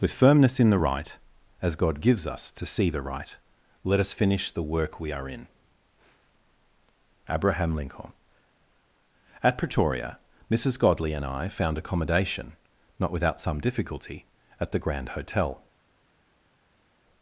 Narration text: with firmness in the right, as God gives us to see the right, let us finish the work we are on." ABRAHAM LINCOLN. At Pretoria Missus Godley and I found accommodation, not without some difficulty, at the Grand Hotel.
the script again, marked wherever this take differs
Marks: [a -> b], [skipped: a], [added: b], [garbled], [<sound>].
with firmness in the right, as God gives us to see the right, let us finish the work we are [on." -> in] ABRAHAM LINCOLN. At Pretoria Missus Godley and I found accommodation, not without some difficulty, at the Grand Hotel.